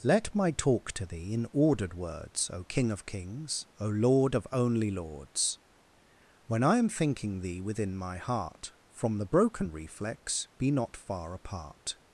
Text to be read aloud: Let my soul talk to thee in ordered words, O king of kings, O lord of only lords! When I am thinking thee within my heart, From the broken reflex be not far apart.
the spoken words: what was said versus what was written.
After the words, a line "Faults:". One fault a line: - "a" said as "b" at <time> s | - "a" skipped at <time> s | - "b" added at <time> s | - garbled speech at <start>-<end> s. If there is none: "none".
Let my talk to thee in ordered words, O king of kings, O lord of only lords! When I am thinking thee within my heart, From the broken reflex be not far apart.
Faults:
- "soul" skipped at 0.5 s